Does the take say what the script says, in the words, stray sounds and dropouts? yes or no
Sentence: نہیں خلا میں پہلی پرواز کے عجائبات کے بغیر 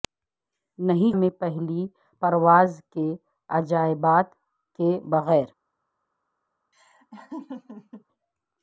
no